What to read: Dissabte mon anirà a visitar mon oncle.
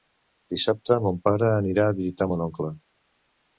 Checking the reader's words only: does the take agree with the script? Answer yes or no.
no